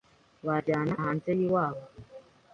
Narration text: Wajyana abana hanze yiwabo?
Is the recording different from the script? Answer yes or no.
yes